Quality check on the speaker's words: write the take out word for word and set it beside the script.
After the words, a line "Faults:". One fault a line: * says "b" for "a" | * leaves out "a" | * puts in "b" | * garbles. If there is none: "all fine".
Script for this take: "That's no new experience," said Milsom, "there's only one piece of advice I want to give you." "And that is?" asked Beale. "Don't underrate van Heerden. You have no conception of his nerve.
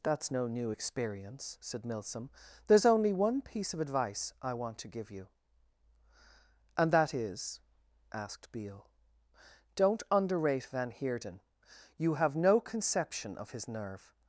"That's no new experience," said Milsom, "there's only one piece of advice I want to give you." "And that is?" asked Beale. "Don't underrate van Heerden. You have no conception of his nerve.
Faults:
all fine